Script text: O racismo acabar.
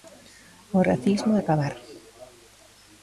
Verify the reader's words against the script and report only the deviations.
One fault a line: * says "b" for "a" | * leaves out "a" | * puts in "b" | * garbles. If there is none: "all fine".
all fine